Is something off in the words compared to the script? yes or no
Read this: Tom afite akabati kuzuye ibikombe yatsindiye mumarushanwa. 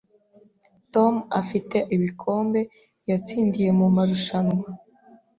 yes